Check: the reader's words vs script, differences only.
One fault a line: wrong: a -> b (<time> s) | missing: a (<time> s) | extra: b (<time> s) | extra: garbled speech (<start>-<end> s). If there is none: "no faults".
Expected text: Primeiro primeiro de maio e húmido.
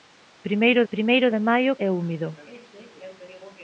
no faults